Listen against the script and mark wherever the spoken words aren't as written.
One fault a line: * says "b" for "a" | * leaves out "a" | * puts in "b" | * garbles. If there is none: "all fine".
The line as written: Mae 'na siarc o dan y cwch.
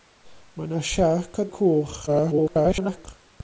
* leaves out "dan"
* garbles